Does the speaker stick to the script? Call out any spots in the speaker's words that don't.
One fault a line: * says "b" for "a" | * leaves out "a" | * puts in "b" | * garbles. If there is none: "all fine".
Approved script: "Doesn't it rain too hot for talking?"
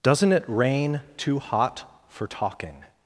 all fine